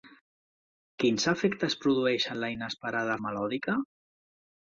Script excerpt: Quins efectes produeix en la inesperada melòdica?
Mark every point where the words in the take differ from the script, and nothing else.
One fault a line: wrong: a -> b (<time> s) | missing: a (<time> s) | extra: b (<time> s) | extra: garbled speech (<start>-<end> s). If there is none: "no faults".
no faults